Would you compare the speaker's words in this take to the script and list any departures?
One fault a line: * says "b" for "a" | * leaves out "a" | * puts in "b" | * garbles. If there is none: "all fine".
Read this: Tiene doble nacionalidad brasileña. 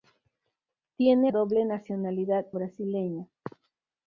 all fine